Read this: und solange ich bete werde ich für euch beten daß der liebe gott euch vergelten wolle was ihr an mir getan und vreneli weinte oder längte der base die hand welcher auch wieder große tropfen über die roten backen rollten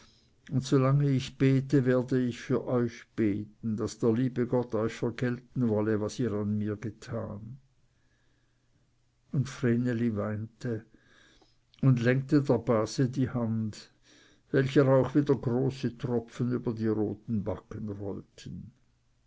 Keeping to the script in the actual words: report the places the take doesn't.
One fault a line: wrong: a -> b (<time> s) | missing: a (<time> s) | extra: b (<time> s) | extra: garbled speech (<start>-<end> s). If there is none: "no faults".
wrong: oder -> und (11.8 s)